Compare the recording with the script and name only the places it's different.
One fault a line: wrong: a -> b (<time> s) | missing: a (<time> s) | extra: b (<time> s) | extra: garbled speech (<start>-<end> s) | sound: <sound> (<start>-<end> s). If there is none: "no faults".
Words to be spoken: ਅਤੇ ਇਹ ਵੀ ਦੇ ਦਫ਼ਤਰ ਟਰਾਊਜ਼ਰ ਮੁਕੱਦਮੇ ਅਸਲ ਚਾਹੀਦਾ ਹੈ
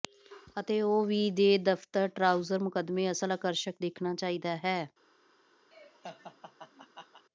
wrong: ਇਹ -> ਉਹ (0.8 s)
extra: ਆਕਰਸ਼ਕ ਦੇਖਣਾ (3.3 s)
sound: laugh (5.7-7.2 s)